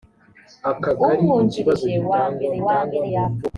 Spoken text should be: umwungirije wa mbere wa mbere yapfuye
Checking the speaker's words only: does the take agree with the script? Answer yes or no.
yes